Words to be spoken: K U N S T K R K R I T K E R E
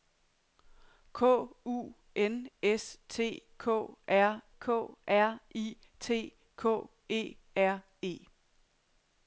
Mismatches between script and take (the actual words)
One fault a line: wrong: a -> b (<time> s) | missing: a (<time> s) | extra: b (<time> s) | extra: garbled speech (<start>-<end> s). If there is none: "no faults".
no faults